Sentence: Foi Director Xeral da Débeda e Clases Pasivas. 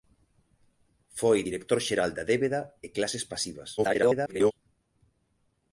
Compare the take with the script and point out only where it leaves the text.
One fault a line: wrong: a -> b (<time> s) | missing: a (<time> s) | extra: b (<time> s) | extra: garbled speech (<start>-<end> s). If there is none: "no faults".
extra: garbled speech (3.8-4.5 s)